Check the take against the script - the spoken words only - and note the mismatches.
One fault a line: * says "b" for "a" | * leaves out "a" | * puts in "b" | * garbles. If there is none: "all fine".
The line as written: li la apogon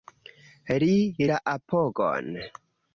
all fine